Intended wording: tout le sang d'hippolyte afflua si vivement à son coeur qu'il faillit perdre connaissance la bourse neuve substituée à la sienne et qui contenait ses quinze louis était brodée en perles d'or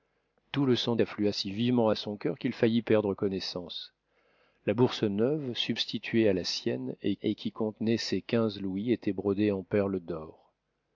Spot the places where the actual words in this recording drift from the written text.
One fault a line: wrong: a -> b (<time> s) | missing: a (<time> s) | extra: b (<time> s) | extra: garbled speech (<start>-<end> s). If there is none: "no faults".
missing: d'hippolyte (0.9 s)
extra: et (7.2 s)